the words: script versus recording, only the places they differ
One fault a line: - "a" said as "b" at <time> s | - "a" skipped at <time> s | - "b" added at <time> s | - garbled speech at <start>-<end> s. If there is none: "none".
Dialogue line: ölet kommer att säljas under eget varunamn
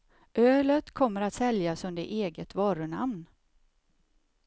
none